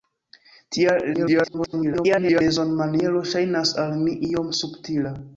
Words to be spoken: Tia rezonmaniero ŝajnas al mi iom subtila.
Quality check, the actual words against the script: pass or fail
fail